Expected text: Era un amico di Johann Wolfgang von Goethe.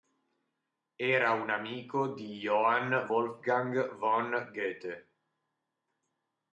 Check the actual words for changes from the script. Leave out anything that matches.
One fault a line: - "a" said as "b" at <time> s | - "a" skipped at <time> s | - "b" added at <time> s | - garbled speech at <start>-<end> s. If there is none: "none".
none